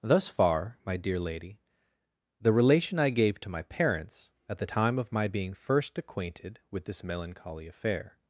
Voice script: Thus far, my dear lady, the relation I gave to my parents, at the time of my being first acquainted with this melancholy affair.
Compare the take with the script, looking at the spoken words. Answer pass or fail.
pass